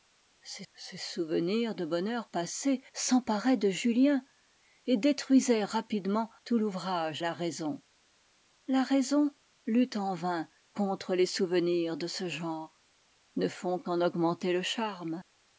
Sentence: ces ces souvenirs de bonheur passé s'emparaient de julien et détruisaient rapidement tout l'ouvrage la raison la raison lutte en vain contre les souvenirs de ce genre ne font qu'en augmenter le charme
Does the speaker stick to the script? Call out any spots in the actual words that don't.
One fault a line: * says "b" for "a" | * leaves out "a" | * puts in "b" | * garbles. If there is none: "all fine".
all fine